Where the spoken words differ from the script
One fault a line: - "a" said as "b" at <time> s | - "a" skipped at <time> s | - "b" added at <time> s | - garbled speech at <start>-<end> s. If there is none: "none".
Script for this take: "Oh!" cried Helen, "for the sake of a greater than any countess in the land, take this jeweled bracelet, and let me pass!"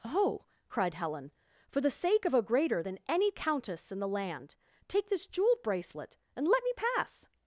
none